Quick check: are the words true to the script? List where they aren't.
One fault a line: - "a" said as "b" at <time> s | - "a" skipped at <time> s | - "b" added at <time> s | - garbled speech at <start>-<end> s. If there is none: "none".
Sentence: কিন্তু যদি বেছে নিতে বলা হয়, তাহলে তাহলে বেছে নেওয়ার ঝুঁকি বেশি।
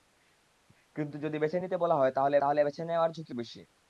none